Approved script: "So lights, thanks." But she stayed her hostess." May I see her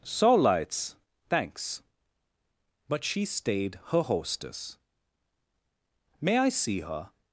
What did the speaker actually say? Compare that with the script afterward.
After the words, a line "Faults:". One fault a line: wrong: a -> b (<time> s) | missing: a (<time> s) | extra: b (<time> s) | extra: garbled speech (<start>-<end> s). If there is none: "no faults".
"So lights, thanks." But she stayed her hostess." May I see her
Faults:
no faults